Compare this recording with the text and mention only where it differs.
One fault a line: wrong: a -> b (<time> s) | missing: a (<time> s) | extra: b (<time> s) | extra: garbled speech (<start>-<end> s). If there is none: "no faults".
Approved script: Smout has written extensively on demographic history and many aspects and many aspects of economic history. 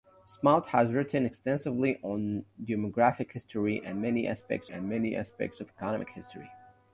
no faults